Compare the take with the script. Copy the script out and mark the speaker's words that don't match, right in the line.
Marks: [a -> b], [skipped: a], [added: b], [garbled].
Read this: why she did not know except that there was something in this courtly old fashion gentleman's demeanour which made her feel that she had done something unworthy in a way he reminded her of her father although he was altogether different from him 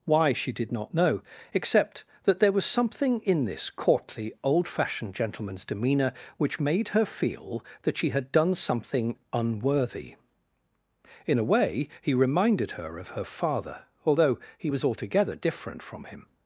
why she did not know except that there was something in this courtly old [fashion -> fashioned] gentleman's demeanour which made her feel that she had done something unworthy in a way he reminded her of her father although he was altogether different from him